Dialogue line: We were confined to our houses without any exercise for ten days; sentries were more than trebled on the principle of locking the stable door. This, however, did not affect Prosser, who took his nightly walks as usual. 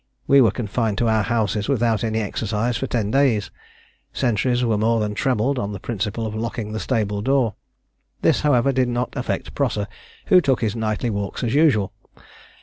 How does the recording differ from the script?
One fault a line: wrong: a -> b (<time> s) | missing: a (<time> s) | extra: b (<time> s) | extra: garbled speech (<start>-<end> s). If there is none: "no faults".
no faults